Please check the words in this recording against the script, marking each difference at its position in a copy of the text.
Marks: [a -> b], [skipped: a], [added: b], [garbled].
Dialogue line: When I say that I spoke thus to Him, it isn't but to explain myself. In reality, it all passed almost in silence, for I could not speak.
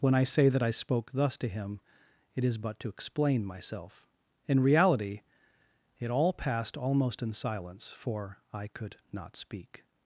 When I say that I spoke thus to Him, it [isn't -> is] but to explain myself. In reality, it all passed almost in silence, for I could not speak.